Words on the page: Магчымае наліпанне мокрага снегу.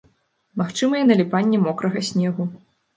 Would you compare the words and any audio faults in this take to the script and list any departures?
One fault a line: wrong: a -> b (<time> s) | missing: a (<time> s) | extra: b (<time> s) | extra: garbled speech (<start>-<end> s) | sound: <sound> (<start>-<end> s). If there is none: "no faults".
no faults